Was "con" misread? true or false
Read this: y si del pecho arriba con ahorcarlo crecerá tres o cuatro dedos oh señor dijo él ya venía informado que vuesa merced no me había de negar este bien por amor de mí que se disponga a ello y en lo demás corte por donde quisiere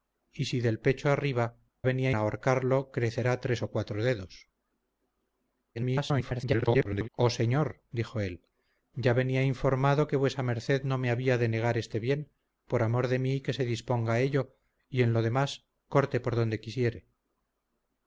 true